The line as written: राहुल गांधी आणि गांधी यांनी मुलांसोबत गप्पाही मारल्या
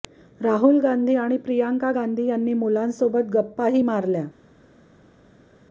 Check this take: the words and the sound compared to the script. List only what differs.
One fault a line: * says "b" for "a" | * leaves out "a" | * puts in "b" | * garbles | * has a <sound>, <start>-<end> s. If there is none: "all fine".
* puts in "प्रियांका"